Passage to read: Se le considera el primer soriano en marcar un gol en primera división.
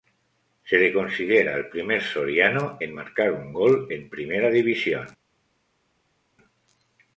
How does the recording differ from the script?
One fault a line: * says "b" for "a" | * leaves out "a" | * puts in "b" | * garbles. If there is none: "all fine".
all fine